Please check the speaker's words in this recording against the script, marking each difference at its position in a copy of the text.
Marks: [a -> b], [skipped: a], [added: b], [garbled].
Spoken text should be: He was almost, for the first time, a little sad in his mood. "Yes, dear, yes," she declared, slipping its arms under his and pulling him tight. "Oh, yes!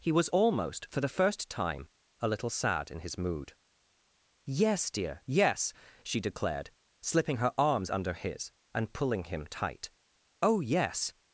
He was almost, for the first time, a little sad in his mood. "Yes, dear, yes," she declared, slipping [its -> her] arms under his and pulling him tight. "Oh, yes!